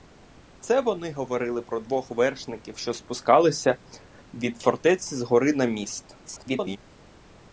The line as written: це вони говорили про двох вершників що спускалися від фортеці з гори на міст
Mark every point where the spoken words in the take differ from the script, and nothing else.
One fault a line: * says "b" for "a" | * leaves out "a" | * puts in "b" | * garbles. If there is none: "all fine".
* garbles